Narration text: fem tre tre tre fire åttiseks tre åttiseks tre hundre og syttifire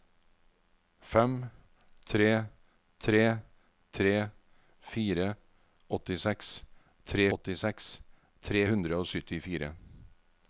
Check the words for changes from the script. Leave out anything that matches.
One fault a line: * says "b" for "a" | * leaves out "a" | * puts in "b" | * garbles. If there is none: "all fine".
all fine